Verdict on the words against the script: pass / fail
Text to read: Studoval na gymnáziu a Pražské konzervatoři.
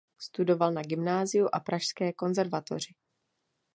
pass